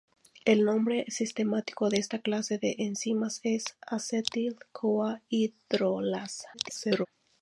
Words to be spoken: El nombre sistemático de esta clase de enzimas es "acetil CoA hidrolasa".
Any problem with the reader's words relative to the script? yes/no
yes